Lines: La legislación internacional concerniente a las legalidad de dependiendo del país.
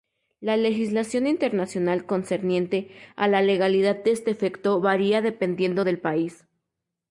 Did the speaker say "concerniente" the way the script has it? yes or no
yes